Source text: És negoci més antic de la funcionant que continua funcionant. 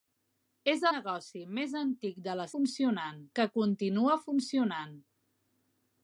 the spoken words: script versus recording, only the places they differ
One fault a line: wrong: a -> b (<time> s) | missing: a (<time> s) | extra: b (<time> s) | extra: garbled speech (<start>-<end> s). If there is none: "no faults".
no faults